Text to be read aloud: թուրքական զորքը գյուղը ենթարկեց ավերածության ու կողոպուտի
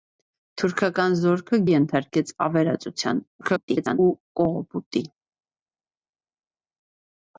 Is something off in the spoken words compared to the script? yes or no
yes